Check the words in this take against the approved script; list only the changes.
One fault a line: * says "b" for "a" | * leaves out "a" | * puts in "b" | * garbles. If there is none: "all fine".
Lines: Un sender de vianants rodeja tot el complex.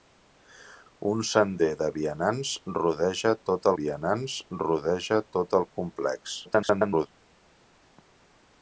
* puts in "vianants rodeja tot"
* garbles